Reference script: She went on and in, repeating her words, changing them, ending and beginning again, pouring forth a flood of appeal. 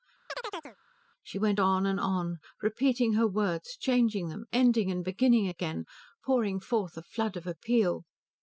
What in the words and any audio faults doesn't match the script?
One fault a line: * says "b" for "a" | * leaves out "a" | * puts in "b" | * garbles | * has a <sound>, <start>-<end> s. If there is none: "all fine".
* has a chirp, 0.3-0.8 s
* says "on" for "in"